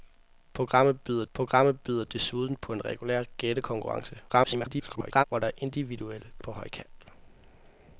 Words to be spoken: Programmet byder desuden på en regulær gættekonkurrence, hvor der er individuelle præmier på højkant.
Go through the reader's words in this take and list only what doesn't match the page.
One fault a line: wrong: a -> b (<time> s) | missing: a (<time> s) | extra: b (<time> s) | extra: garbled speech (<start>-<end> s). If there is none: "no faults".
extra: programmet byder (1.3 s)
extra: garbled speech (4.3-5.2 s)
missing: præmier (6.3 s)